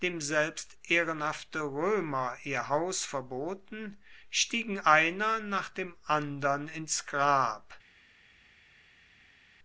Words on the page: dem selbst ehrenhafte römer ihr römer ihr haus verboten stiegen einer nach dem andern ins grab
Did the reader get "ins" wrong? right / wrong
right